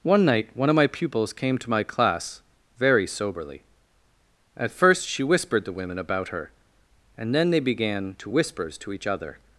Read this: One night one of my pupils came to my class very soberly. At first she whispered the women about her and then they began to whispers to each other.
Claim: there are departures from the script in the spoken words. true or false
false